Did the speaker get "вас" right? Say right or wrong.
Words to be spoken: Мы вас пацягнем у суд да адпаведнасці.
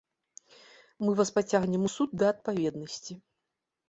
right